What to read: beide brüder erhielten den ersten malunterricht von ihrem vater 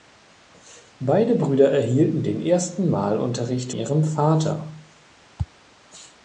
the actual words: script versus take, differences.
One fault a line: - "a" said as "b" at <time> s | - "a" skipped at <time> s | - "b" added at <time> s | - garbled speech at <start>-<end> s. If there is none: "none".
- "von" skipped at 3.7 s